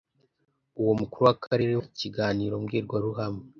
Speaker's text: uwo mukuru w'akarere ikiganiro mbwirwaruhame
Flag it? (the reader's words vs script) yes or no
no